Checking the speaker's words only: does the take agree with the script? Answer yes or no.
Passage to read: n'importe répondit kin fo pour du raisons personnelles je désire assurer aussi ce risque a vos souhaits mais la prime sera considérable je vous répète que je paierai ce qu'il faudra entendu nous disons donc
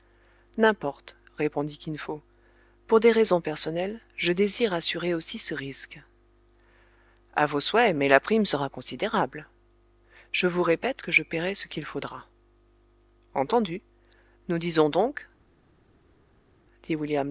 no